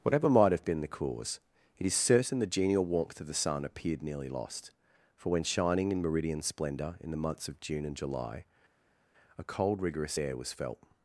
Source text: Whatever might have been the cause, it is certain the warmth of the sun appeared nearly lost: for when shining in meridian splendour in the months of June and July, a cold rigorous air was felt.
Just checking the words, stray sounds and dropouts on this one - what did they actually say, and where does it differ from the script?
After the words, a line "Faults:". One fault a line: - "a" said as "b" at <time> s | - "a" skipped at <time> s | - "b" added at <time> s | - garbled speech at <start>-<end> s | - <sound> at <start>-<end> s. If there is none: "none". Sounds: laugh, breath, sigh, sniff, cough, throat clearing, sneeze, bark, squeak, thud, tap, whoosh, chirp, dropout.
Whatever might have been the cause, it is certain the genial warmth of the sun appeared nearly lost: for when shining in meridian splendour in the months of June and July, a cold rigorous air was felt.
Faults:
- "genial" added at 2.5 s